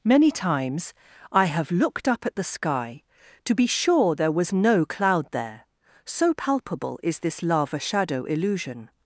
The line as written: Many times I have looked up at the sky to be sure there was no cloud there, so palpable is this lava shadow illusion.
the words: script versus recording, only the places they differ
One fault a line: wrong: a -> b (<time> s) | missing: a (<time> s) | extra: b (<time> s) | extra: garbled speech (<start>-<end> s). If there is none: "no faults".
no faults